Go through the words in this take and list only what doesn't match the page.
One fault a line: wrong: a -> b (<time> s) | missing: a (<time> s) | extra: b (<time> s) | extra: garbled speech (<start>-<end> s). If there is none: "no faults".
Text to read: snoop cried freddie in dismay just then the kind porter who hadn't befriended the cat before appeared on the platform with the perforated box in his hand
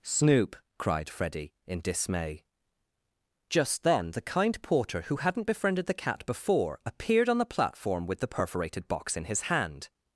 no faults